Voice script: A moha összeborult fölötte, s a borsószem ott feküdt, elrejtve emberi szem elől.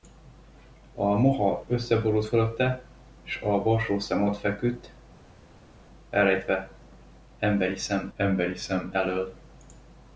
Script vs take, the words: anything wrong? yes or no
yes